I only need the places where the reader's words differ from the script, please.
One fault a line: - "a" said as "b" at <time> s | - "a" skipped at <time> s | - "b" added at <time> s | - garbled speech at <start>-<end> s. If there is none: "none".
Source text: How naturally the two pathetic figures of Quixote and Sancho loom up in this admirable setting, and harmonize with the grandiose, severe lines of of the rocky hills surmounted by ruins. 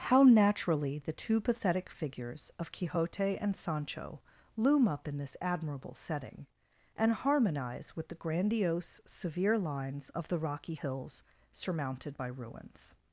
- "of" skipped at 10.3 s